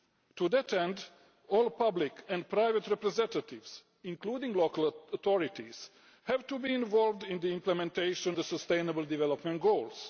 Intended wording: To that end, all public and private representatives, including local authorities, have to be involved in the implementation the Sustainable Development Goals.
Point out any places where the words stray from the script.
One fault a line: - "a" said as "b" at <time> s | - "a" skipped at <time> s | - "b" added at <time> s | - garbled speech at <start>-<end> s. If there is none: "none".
none